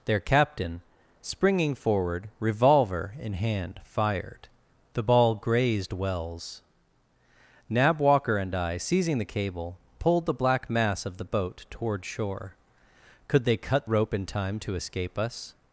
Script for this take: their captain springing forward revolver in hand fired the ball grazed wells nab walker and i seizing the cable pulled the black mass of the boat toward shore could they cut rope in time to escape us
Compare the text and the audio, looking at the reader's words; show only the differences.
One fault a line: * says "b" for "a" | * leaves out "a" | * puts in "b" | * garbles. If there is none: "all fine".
all fine